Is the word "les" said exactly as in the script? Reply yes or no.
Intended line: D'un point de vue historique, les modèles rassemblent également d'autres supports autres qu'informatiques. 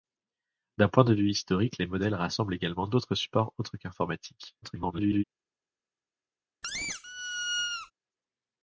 yes